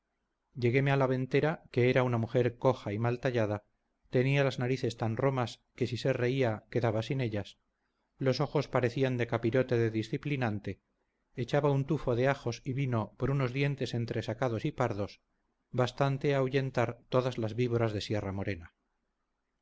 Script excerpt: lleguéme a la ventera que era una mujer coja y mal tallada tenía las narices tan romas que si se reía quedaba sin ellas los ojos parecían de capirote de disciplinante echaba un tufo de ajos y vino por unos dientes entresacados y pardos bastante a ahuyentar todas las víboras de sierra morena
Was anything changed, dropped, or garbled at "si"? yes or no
no